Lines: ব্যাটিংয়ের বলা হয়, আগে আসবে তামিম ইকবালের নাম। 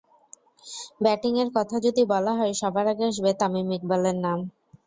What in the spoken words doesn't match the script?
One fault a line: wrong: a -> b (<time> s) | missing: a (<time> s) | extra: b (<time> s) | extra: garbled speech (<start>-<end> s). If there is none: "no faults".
extra: কথা যদি (1.6 s)
extra: সবার (2.6 s)